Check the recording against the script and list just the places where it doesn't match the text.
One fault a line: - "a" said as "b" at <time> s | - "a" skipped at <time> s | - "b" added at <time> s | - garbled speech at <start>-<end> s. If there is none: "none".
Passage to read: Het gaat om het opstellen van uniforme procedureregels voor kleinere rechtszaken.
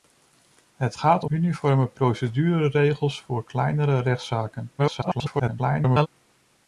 - "het opstellen van" skipped at 1.3 s
- garbled speech at 4.8-6.1 s